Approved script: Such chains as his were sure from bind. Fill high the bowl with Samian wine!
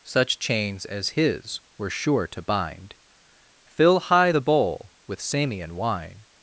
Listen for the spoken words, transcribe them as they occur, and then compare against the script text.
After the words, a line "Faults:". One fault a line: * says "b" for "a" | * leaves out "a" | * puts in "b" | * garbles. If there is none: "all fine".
Such chains as his were sure to bind. Fill high the bowl with Samian wine!
Faults:
* says "to" for "from"